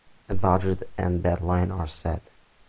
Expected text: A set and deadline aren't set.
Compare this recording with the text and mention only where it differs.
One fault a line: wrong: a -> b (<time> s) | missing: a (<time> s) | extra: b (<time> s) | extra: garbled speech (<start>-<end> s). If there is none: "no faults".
wrong: set -> budget (0.3 s)
wrong: aren't -> are (1.7 s)